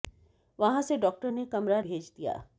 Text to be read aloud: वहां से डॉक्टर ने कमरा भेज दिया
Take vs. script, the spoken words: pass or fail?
pass